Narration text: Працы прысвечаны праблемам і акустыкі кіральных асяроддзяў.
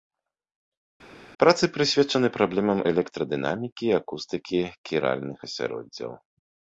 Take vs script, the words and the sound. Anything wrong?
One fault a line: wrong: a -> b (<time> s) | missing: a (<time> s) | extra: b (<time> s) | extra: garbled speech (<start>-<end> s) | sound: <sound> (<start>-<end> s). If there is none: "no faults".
extra: электрадынамікі (2.9 s)